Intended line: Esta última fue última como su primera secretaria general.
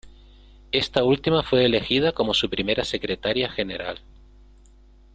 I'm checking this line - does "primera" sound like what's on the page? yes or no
yes